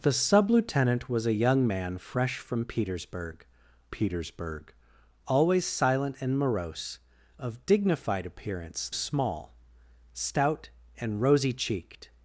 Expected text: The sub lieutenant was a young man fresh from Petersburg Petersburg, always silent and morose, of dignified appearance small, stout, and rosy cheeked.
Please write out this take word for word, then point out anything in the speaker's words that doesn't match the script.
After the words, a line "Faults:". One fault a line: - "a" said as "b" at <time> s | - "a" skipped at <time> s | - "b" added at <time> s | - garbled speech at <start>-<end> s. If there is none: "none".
The sub lieutenant was a young man fresh from Petersburg Petersburg, always silent and morose, of dignified appearance small, stout, and rosy cheeked.
Faults:
none